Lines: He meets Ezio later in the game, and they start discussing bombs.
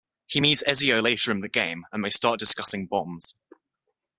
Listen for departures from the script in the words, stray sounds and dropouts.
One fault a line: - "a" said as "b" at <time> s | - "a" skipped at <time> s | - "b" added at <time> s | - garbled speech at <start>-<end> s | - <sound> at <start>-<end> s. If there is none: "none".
none